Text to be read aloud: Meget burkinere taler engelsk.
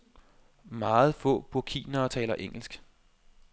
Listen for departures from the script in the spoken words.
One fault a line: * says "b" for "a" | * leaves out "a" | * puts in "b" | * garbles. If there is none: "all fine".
* puts in "få"